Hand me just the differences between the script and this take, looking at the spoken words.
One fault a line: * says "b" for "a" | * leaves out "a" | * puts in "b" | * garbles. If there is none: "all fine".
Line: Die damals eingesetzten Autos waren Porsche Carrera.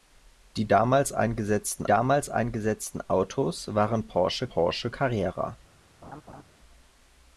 * puts in "damals eingesetzten"
* puts in "Porsche"